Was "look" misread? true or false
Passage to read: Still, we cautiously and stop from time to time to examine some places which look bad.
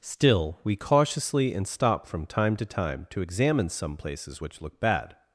false